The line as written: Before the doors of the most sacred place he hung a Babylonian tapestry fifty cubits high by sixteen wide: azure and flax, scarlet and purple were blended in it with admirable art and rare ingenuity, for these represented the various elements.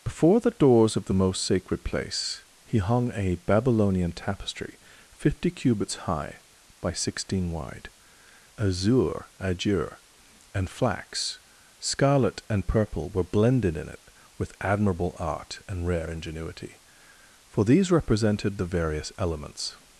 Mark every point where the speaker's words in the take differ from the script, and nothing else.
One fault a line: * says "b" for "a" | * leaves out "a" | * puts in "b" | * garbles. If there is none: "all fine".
* puts in "azure"